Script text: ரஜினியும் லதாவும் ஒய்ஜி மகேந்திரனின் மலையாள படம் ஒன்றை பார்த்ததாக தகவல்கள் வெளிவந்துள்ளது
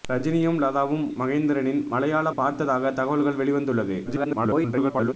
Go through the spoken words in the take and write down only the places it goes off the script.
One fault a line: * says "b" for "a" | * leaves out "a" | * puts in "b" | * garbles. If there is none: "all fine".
* leaves out "ஒய்ஜி"
* leaves out "படம் ஒன்றை"
* garbles